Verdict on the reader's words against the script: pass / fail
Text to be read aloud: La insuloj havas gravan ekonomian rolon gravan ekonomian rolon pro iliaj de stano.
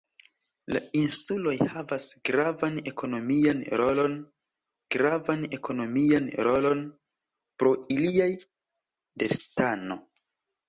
pass